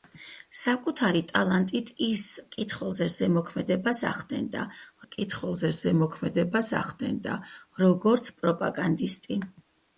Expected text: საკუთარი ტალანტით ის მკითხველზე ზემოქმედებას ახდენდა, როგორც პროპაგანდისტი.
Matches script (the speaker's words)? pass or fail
fail